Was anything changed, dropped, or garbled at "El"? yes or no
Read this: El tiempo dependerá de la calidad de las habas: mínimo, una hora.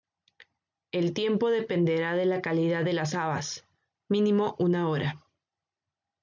no